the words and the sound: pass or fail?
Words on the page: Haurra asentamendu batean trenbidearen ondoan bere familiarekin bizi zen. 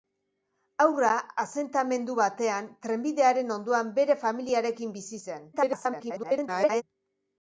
fail